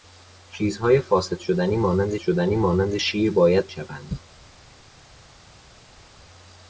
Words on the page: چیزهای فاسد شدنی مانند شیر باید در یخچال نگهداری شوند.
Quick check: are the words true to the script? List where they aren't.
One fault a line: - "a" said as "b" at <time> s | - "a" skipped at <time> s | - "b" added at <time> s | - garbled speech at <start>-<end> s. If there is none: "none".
- "شدنی مانند" added at 2.2 s
- "در یخچال نگهداری" skipped at 3.7 s